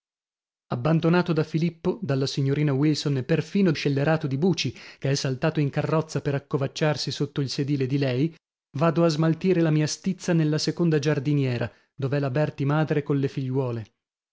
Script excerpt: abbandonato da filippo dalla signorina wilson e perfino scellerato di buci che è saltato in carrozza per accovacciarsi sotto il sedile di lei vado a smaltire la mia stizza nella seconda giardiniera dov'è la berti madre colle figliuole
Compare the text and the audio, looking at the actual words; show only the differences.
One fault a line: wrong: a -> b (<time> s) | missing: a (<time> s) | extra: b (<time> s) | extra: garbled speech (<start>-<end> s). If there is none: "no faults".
no faults